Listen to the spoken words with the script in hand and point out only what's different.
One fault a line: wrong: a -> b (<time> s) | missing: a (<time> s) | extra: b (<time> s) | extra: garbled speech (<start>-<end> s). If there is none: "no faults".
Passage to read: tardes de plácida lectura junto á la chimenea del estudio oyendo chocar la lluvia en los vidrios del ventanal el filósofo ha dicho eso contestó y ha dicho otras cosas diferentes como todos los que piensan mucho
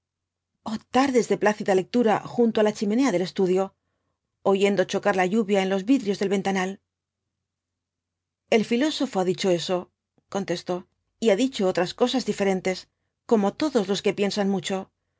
no faults